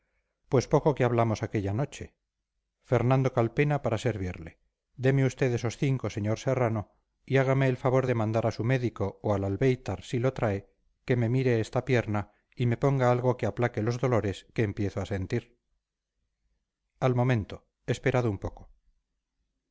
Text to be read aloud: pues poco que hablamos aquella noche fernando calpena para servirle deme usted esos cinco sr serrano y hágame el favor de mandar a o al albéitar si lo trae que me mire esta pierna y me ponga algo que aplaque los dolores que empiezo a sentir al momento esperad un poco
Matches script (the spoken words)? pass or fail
fail